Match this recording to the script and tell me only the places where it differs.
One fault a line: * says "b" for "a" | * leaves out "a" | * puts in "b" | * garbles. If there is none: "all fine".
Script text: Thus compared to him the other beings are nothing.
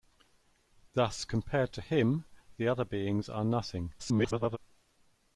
* garbles